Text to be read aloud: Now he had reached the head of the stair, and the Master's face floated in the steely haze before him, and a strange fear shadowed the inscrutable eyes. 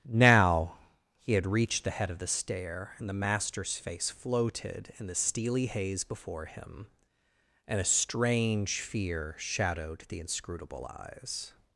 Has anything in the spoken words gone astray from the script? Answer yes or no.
no